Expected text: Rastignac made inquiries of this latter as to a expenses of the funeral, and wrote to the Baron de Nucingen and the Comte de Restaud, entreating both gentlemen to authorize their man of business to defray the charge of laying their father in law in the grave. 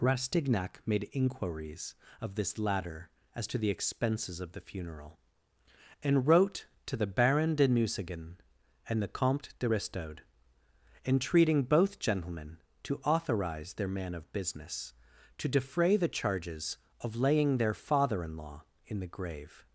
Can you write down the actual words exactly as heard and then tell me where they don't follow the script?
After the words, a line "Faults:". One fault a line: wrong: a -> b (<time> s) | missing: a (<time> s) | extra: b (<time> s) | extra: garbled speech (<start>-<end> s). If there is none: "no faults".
Rastignac made inquiries of this latter as to the expenses of the funeral, and wrote to the Baron de Nucingen and the Comte de Restaud, entreating both gentlemen to authorize their man of business to defray the charges of laying their father in law in the grave.
Faults:
wrong: a -> the (3.6 s)
wrong: charge -> charges (16.1 s)